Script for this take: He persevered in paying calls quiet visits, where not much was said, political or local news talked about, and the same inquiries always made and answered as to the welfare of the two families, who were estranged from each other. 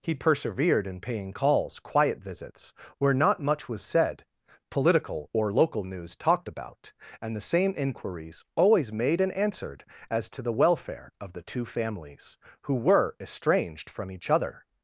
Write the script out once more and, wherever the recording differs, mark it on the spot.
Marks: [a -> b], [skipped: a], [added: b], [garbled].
He persevered in paying calls quiet visits, where not much was said, political or local news talked about, and the same inquiries always made and answered as to the welfare of the two families, who were estranged from each other.